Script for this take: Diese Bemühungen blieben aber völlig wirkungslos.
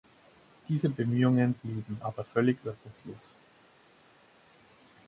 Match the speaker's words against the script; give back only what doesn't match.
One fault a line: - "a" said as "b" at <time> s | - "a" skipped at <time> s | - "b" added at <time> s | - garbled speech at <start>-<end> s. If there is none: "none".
none